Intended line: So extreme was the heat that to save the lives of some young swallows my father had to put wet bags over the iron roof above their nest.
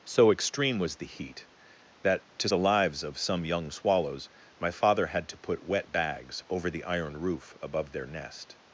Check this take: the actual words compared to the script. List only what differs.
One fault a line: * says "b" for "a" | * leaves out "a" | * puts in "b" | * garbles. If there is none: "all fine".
* leaves out "save"